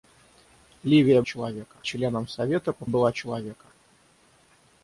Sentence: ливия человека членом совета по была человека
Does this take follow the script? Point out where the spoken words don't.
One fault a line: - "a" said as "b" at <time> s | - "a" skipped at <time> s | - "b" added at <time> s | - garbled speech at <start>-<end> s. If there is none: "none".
none